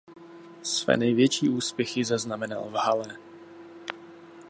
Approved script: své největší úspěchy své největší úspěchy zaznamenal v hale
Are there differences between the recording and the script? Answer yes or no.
yes